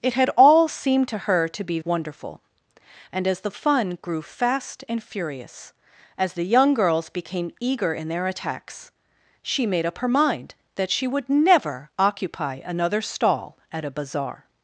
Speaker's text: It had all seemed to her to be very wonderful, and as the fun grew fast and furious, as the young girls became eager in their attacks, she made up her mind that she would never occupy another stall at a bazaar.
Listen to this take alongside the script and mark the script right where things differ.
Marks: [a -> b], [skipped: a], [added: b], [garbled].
It had all seemed to her to be [skipped: very] wonderful, and as the fun grew fast and furious, as the young girls became eager in their attacks, she made up her mind that she would never occupy another stall at a bazaar.